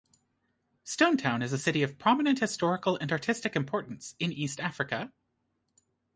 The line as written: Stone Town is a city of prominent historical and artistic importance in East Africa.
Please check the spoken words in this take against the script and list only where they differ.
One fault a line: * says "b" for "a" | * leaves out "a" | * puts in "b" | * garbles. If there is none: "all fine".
all fine